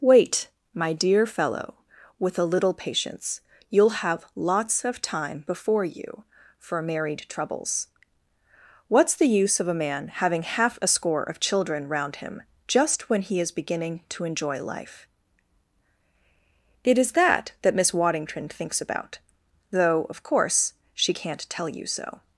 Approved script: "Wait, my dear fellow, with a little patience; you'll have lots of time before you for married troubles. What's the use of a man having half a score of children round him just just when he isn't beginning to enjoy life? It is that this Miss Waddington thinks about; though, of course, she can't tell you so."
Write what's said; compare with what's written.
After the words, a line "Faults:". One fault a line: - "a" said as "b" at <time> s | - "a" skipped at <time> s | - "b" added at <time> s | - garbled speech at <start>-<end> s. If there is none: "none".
"Wait, my dear fellow, with a little patience; you'll have lots of time before you for married troubles. What's the use of a man having half a score of children round him just when he is beginning to enjoy life? It is that that Miss Waddington thinks about; though, of course, she can't tell you so."
Faults:
- "just" skipped at 13.1 s
- "isn't" said as "is" at 13.4 s
- "this" said as "that" at 17.6 s